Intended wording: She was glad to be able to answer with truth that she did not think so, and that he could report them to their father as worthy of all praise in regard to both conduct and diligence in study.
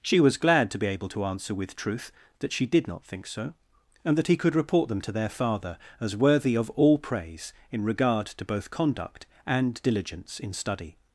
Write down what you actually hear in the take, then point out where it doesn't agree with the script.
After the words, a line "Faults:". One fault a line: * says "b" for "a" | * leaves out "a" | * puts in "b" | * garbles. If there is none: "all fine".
She was glad to be able to answer with truth that she did not think so, and that he could report them to their father as worthy of all praise in regard to both conduct and diligence in study.
Faults:
all fine